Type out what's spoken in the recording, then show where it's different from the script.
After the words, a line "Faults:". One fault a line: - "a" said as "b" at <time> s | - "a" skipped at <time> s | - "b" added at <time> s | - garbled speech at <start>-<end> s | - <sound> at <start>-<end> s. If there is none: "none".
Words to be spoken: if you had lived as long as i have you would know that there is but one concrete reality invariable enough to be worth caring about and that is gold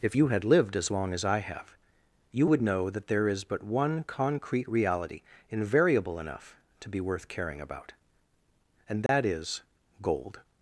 if you had lived as long as i have you would know that there is but one concrete reality invariable enough to be worth caring about and that is gold
Faults:
- dropout at 9.1-9.1 s